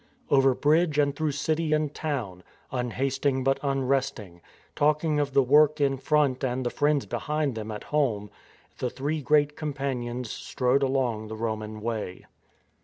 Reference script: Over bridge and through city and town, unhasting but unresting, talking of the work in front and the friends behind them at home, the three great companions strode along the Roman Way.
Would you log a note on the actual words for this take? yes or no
no